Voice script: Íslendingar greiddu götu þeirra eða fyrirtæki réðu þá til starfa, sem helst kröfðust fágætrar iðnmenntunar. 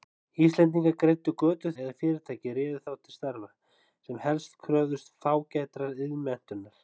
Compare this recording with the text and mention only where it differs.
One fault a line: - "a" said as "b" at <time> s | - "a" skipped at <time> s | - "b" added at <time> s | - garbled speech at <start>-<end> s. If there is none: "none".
- "þeirra" skipped at 1.7 s